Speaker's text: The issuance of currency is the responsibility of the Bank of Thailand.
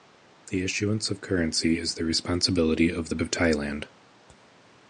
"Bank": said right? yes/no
no